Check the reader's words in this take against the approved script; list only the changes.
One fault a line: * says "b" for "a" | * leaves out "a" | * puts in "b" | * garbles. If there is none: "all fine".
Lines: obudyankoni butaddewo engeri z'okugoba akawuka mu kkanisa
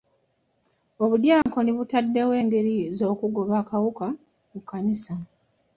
all fine